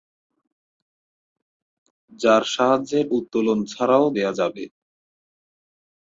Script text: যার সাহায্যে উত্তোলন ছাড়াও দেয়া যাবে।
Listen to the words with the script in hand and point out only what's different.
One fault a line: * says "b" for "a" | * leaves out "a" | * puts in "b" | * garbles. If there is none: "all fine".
all fine